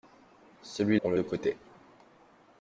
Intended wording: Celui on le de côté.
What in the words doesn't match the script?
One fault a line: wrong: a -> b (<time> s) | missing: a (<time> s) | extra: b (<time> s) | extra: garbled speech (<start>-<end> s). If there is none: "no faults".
no faults